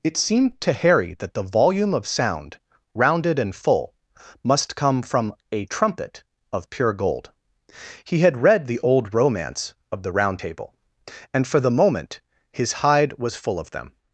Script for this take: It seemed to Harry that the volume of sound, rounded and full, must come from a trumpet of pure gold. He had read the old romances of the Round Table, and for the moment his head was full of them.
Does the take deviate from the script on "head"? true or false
true